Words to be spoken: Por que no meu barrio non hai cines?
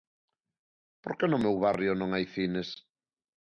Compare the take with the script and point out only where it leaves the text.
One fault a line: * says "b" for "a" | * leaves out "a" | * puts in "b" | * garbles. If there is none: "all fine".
all fine